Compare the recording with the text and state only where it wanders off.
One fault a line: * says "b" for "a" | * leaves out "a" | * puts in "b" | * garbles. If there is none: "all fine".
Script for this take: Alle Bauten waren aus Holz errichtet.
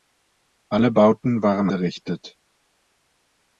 * leaves out "aus Holz"